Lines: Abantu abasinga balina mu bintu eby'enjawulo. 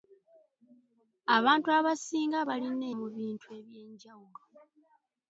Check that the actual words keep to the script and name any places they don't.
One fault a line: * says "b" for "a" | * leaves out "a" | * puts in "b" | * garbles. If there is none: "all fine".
all fine